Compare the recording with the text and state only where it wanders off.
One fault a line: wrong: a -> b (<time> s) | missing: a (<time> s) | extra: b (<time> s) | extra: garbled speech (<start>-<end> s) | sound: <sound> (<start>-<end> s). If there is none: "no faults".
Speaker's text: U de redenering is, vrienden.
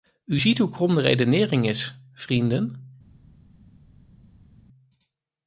extra: ziet hoe krom (0.4 s)